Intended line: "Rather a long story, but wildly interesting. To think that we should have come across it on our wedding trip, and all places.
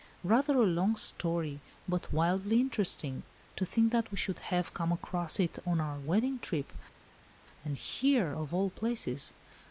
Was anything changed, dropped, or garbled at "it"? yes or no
no